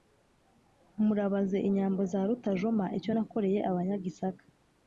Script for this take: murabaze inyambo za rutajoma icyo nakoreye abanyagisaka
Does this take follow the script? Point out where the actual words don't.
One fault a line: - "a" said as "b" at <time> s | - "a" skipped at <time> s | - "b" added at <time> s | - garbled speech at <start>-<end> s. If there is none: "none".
none